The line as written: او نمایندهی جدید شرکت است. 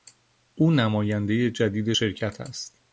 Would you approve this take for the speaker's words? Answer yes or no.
yes